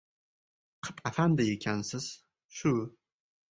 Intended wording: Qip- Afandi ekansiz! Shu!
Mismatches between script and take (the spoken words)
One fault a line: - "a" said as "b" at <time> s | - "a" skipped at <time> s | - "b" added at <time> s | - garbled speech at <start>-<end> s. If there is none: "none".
none